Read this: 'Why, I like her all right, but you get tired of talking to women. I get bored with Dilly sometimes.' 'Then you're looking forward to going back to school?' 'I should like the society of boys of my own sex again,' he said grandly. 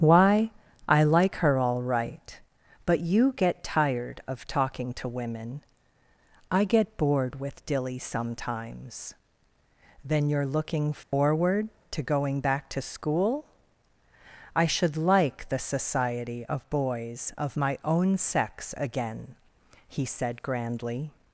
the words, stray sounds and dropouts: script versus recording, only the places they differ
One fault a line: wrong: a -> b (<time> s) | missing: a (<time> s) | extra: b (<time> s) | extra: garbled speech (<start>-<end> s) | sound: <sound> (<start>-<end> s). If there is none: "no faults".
sound: dropout (11.0-11.1 s)